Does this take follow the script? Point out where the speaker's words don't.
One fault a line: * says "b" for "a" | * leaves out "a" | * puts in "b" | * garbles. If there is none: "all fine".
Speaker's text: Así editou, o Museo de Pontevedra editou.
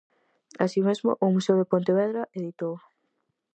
* says "mesmo" for "editou"